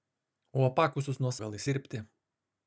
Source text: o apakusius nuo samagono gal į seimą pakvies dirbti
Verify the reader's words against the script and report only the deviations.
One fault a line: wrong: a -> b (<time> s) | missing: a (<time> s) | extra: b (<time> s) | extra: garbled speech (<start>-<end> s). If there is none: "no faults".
missing: samagono (1.3 s)
missing: seimą pakvies (1.6 s)